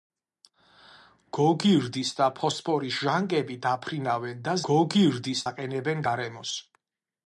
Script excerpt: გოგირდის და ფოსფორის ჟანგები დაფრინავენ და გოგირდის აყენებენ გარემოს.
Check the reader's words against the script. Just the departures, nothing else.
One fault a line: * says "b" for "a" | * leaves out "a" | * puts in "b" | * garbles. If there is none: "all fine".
all fine